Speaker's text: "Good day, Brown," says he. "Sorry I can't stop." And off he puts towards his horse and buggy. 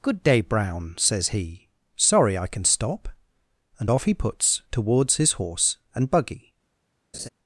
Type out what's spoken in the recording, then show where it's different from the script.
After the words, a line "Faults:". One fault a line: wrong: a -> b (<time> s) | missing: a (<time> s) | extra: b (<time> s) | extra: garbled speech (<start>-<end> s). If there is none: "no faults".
"Good day, Brown," says he. "Sorry I can stop." And off he puts towards his horse and buggy.
Faults:
wrong: can't -> can (2.5 s)